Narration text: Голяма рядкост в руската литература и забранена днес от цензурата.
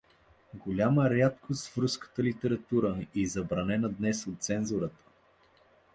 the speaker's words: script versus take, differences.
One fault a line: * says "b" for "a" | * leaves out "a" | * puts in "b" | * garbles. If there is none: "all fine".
all fine